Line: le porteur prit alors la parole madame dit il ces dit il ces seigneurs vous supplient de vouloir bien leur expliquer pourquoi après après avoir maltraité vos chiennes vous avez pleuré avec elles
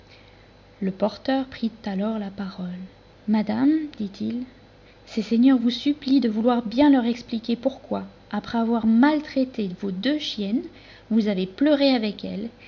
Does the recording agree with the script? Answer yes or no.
no